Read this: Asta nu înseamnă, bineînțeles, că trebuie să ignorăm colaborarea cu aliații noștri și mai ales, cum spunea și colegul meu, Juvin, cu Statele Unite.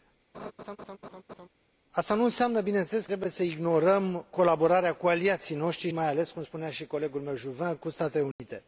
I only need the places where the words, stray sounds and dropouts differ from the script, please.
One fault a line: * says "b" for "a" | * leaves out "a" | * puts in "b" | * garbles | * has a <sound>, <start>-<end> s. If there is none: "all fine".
* has a laugh, 0.3-1.5 s
* leaves out "că"
* leaves out "și"
* has a dropout, 8.3-8.4 s